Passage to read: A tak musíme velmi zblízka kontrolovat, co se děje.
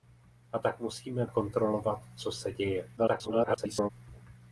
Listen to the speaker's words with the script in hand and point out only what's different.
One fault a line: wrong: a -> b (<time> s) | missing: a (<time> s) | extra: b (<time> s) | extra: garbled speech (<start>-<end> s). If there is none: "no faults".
missing: velmi zblízka (1.2 s)
extra: garbled speech (3.0-3.9 s)